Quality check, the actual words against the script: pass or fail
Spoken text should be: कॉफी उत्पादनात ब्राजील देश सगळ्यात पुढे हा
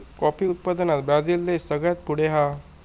pass